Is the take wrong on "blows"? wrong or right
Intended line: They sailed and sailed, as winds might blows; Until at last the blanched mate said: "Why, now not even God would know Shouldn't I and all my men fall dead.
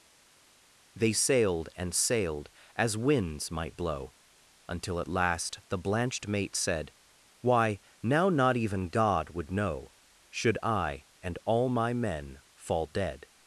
wrong